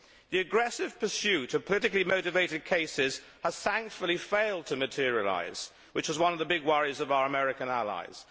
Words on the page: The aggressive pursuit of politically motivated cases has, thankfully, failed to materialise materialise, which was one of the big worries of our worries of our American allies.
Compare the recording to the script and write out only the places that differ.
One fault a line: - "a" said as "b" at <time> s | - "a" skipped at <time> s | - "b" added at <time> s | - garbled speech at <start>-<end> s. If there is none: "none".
- "materialise" skipped at 5.7 s
- "worries of our" skipped at 7.2 s